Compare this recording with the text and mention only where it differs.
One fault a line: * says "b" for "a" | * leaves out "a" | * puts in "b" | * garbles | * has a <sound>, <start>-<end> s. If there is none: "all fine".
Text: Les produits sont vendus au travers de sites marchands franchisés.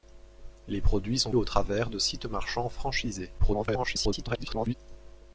* leaves out "vendus"
* garbles